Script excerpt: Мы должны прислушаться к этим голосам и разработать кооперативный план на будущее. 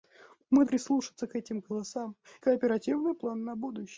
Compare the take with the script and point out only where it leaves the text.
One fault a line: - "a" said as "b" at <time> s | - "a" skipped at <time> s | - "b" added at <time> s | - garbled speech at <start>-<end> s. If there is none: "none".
- "должны" skipped at 0.7 s
- "и разработать" skipped at 2.2 s